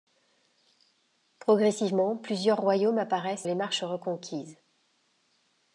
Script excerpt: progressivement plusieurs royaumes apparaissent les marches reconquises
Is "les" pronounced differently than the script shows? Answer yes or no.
no